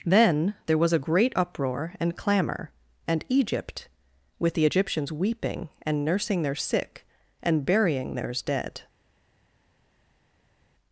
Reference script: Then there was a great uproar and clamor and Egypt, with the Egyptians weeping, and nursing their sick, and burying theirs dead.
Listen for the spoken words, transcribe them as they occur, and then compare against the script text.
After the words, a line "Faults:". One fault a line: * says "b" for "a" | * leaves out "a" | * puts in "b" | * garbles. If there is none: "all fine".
Then there was a great uproar and clamor and Egypt, with the Egyptians weeping, and nursing their sick, and burying theirs dead.
Faults:
all fine